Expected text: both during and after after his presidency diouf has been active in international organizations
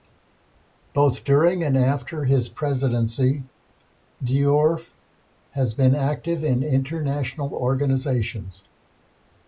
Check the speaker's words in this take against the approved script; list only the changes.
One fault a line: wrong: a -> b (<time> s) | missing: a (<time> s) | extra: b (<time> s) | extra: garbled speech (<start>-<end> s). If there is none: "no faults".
missing: after (2.2 s)